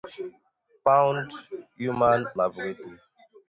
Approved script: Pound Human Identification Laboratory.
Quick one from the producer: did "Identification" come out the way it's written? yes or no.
no